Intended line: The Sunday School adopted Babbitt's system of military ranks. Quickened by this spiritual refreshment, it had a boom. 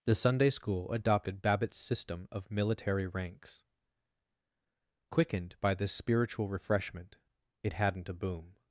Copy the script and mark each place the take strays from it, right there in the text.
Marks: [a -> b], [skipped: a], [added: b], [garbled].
The Sunday School adopted Babbitt's system of military ranks. Quickened by this spiritual refreshment, it [had -> hadn't] a boom.